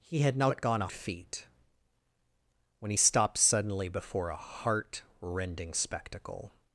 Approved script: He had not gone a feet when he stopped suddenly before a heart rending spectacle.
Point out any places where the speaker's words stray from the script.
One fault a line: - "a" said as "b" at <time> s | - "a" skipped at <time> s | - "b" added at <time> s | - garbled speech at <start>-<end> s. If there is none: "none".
none